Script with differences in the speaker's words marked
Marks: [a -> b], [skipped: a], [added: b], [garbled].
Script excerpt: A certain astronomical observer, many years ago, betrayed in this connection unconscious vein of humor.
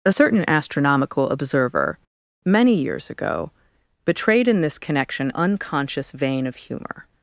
A certain astronomical observer, many years ago, betrayed in this connection unconscious vein of humor.